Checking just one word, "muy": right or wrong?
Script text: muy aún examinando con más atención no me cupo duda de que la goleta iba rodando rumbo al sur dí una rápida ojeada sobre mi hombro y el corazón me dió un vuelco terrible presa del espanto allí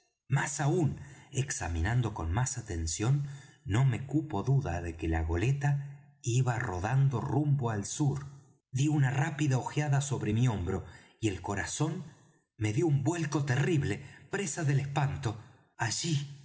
wrong